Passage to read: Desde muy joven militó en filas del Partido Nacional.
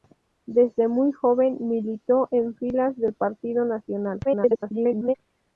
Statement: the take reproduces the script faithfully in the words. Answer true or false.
false